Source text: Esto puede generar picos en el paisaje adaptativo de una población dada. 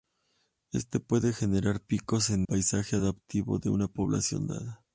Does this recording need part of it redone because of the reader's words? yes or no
yes